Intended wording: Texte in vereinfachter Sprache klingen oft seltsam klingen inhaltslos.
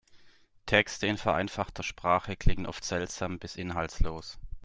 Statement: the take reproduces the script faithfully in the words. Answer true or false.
false